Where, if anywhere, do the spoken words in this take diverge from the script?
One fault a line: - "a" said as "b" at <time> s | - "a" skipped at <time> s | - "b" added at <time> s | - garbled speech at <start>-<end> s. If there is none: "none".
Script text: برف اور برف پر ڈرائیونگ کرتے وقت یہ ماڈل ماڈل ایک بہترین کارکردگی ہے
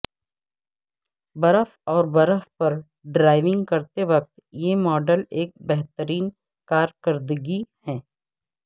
- "ماڈل" skipped at 5.2 s